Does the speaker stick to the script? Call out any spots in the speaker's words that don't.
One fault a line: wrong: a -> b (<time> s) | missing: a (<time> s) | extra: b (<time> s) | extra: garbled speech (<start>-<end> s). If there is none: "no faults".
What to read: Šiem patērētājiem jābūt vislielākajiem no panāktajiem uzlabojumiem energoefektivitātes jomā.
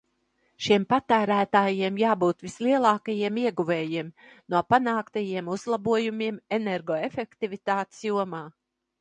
extra: ieguvējiem (3.4 s)